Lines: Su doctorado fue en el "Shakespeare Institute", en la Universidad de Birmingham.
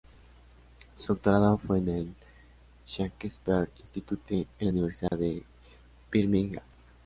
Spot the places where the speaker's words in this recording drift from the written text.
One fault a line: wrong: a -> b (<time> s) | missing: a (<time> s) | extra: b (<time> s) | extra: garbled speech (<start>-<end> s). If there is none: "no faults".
no faults